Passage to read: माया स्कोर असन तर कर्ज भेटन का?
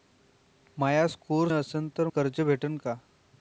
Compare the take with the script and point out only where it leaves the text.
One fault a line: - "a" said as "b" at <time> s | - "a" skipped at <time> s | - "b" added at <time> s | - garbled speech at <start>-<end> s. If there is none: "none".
none